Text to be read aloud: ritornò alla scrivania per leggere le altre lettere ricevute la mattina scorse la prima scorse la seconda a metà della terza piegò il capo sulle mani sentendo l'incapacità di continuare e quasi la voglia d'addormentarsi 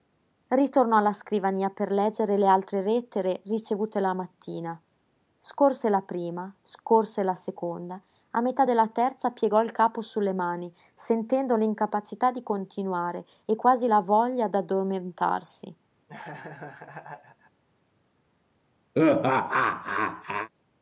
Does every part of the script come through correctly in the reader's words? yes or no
yes